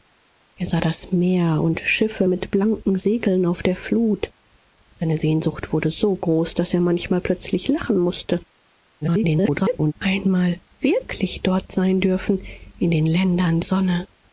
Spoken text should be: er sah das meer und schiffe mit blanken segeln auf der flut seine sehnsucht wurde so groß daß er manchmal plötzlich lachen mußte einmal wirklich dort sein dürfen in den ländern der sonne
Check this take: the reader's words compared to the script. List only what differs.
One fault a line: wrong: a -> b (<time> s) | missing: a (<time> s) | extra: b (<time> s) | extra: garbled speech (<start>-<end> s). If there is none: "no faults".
extra: garbled speech (9.0-9.9 s)
missing: der (13.6 s)